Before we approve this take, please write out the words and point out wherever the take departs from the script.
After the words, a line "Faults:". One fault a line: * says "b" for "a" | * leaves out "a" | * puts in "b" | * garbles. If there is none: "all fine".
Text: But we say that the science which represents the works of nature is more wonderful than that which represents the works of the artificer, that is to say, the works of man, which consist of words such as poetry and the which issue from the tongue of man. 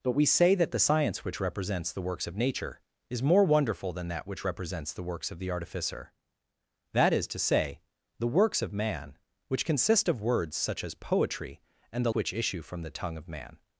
But we say that the science which represents the works of nature is more wonderful than that which represents the works of the artificer, that is to say, the works of man, which consist of words such as poetry and the which issue from the tongue of man.
Faults:
all fine